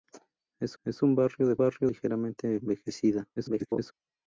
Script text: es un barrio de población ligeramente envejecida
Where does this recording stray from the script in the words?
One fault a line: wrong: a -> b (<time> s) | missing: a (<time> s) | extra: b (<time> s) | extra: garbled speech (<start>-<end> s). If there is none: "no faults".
extra: es (0.8 s)
wrong: población -> barrio (1.6 s)
extra: garbled speech (3.4-3.9 s)